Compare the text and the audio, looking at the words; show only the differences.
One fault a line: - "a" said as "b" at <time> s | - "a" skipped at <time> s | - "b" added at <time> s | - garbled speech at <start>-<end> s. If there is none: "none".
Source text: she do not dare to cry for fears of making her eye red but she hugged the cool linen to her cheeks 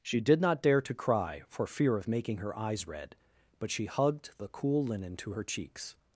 - "do" said as "did" at 0.2 s
- "fears" said as "fear" at 1.7 s
- "eye" said as "eyes" at 2.6 s